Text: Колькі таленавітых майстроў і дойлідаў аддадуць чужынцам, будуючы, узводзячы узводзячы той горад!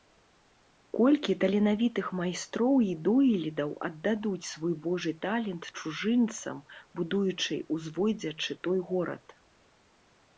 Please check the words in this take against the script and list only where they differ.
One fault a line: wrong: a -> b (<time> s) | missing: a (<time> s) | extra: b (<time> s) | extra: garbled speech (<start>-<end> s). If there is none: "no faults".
extra: свой Божы талент (4.5 s)
missing: узводзячы (8.5 s)